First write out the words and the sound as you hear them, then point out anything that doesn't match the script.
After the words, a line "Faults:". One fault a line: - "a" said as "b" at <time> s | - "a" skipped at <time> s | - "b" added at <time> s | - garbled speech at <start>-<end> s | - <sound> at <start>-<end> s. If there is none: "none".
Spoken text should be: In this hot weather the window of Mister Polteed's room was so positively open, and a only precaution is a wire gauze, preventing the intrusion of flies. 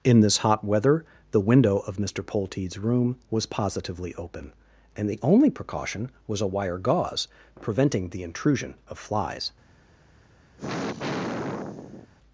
In this hot weather the window of Mister Polteed's room was positively open, and the only precaution was a wire gauze, preventing the intrusion of flies.
Faults:
- "so" skipped at 3.5 s
- "a" said as "the" at 5.1 s
- "is" said as "was" at 6.3 s
- sigh at 10.6-12.1 s